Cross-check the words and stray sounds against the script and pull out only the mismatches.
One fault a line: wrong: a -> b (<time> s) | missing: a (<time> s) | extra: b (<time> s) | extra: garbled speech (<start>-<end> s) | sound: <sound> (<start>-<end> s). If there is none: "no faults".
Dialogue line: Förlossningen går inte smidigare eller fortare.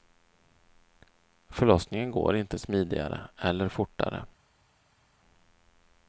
no faults